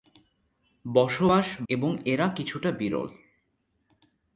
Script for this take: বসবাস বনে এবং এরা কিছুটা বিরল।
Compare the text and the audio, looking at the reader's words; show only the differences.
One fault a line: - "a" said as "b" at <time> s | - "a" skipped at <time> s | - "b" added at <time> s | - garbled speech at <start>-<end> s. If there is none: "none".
- "বনে" skipped at 1.5 s